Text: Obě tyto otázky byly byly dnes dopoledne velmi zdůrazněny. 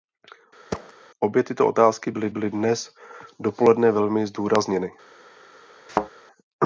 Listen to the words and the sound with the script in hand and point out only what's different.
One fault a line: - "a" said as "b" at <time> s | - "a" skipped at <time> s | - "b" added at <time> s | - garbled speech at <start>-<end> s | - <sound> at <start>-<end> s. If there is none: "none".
- thud at 0.7-0.9 s
- thud at 5.9-6.1 s